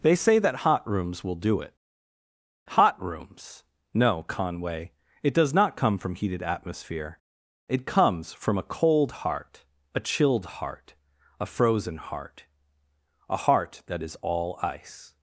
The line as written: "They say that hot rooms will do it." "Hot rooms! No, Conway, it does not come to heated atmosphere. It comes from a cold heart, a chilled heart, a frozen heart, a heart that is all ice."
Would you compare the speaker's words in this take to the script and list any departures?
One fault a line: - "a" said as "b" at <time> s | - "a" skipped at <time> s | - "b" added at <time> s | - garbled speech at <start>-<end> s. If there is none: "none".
- "to" said as "from" at 6.0 s